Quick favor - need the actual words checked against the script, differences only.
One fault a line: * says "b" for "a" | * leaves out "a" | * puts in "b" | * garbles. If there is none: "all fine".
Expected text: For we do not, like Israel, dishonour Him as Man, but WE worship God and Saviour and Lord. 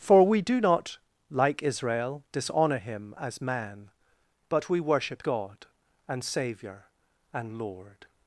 all fine